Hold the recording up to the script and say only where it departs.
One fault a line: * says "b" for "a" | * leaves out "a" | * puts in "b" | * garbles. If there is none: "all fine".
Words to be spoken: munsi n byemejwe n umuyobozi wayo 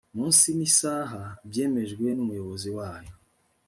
* puts in "isaha"